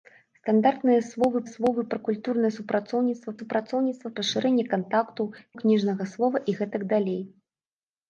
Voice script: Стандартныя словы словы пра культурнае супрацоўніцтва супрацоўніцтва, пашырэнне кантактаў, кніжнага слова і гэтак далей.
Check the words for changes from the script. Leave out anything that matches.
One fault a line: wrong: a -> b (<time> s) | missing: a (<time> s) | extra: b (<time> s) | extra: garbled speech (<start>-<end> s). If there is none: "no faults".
no faults